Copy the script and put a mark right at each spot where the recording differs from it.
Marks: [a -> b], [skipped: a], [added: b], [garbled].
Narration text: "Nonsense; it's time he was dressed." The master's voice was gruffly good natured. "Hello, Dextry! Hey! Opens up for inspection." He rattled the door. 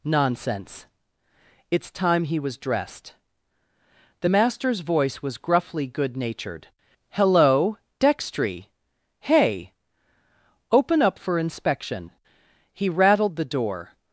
"Nonsense; it's time he was dressed." The master's voice was gruffly good natured. "Hello, Dextry! Hey! [Opens -> Open] up for inspection." He rattled the door.